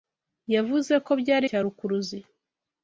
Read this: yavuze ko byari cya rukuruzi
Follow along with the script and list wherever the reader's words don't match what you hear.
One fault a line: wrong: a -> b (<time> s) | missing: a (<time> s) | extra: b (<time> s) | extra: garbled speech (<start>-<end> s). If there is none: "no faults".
no faults